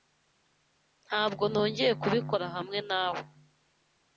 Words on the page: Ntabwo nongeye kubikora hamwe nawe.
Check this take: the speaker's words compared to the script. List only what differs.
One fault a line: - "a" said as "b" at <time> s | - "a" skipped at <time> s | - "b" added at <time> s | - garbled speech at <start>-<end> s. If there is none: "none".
none